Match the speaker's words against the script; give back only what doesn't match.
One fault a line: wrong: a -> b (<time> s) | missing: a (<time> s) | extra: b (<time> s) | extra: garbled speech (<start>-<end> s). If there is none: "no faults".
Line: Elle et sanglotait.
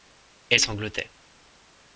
no faults